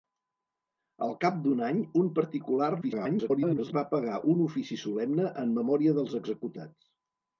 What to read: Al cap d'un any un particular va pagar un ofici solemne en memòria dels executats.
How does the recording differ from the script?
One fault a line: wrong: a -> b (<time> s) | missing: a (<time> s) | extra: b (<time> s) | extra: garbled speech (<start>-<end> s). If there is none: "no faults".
extra: garbled speech (2.8-3.7 s)